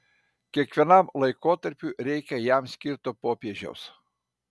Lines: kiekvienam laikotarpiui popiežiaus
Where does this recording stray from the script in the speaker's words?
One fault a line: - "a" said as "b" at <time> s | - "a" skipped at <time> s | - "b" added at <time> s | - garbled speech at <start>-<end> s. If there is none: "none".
- "reikia jam skirto" added at 2.1 s